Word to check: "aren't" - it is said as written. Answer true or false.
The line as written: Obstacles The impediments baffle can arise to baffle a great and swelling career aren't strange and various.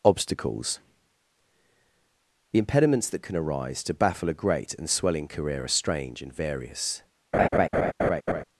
false